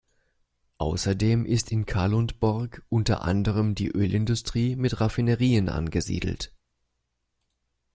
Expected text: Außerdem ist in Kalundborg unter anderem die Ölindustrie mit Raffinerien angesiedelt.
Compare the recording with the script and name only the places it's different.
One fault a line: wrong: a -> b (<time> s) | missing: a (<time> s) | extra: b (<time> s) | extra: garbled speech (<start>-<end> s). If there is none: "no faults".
no faults